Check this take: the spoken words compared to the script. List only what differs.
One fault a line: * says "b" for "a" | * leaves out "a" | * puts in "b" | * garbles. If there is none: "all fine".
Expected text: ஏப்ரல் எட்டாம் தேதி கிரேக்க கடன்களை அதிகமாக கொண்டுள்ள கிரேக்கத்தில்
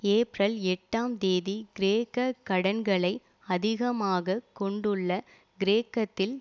all fine